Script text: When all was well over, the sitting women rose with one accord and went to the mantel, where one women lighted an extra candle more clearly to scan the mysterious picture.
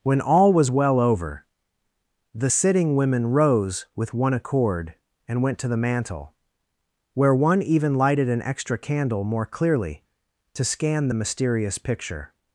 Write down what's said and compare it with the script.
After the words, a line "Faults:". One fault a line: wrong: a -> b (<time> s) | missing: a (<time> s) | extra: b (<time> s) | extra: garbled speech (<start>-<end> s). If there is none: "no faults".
When all was well over, the sitting women rose with one accord and went to the mantel, where one even lighted an extra candle more clearly to scan the mysterious picture.
Faults:
wrong: women -> even (7.6 s)